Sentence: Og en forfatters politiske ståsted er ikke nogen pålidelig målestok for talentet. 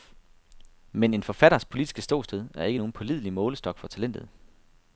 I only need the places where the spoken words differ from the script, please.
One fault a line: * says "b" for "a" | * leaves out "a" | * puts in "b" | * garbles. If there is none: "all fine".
* says "Men" for "Og"